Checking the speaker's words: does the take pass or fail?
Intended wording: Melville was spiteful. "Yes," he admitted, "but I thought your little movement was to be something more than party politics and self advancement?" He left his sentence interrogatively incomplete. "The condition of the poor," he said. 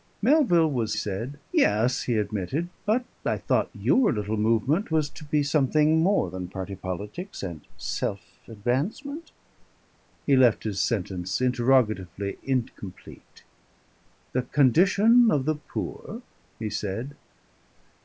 fail